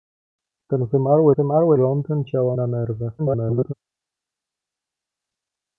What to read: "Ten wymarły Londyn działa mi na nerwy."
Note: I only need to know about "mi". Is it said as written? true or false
false